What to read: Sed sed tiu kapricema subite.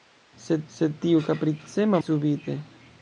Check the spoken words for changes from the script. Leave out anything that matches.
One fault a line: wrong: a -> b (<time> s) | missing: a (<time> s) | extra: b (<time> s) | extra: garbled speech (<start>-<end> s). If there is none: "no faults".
no faults